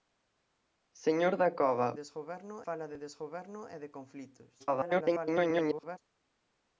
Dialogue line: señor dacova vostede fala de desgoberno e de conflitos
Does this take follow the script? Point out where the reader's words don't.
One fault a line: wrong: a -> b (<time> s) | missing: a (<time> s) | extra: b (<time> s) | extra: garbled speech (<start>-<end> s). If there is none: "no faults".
wrong: vostede -> desgoberno (2.0 s)
extra: garbled speech (4.6-6.0 s)